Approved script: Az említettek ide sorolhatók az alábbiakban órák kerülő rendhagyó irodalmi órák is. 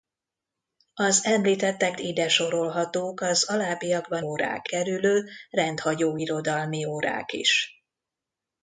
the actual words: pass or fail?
pass